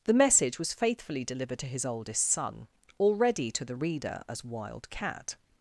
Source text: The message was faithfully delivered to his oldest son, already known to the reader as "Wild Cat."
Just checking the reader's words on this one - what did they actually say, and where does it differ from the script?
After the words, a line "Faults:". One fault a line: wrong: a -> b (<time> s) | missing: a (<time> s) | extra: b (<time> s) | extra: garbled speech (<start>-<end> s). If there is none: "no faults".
The message was faithfully delivered to his oldest son, already to the reader as "Wild Cat."
Faults:
missing: known (3.5 s)